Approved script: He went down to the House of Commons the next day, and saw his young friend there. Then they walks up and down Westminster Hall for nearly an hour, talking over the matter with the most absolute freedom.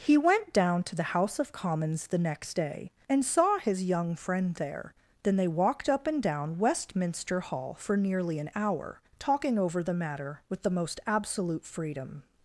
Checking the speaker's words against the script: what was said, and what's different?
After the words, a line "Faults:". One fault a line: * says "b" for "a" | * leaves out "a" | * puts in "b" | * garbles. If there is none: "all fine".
He went down to the House of Commons the next day, and saw his young friend there. Then they walked up and down Westminster Hall for nearly an hour, talking over the matter with the most absolute freedom.
Faults:
* says "walked" for "walks"